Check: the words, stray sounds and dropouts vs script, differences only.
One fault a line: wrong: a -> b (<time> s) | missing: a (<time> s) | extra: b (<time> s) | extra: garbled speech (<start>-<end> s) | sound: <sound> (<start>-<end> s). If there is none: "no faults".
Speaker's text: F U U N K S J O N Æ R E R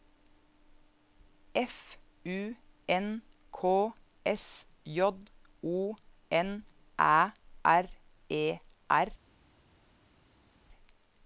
missing: U (2.5 s)